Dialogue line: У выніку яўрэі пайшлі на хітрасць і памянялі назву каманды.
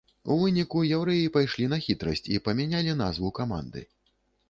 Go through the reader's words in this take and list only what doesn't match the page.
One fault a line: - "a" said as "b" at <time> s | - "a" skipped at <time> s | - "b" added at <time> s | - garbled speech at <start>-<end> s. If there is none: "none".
none